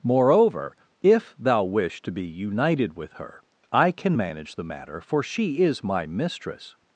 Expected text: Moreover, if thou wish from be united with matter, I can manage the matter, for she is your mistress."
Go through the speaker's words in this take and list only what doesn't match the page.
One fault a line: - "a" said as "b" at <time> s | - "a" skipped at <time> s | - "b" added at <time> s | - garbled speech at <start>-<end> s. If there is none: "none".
- "from" said as "to" at 2.0 s
- "matter" said as "her" at 3.1 s
- "your" said as "my" at 5.8 s